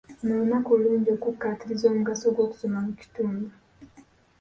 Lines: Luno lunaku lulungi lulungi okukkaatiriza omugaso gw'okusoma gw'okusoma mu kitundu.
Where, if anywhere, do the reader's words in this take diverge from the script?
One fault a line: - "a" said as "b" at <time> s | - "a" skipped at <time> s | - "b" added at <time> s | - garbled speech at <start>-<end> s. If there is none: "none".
- "lulungi" skipped at 1.1 s
- "gw'okusoma" skipped at 2.8 s